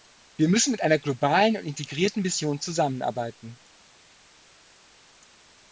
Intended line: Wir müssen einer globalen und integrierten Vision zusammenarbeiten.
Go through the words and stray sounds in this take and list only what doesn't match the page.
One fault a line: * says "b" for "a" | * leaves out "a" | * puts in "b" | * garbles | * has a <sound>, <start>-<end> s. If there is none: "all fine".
* puts in "mit"